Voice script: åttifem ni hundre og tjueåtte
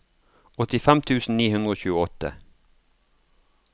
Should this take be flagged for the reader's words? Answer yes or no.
yes